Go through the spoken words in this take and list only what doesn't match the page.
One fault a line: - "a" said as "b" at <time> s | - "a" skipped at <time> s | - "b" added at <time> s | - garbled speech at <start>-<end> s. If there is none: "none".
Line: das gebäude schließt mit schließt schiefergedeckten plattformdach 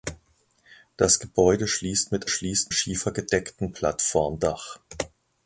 none